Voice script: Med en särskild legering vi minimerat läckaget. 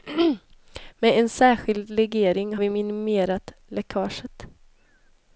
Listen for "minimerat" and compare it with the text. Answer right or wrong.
right